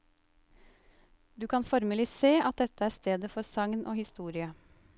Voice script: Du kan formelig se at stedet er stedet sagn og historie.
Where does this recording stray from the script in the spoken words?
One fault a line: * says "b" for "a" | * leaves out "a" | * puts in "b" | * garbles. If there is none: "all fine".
* says "dette" for "stedet"
* puts in "for"